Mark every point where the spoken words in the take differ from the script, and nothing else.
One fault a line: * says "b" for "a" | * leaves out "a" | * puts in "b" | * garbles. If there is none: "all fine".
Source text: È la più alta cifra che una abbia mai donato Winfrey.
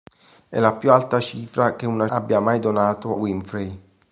all fine